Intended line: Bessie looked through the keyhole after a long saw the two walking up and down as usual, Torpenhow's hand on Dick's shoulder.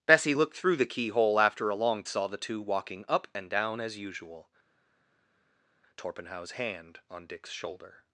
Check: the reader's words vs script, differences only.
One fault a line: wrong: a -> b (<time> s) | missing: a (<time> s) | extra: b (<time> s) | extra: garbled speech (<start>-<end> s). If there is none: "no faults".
no faults